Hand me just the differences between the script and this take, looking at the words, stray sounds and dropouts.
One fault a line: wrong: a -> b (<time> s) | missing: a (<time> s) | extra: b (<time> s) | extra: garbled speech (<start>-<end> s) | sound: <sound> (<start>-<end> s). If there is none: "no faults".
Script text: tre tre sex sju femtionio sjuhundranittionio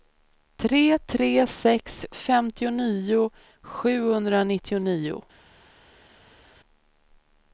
missing: sju (2.0 s)